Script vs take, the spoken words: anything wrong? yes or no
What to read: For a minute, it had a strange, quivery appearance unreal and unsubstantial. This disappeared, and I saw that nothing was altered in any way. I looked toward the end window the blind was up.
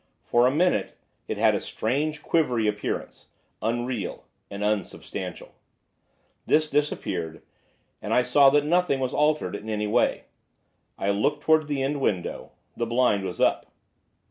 no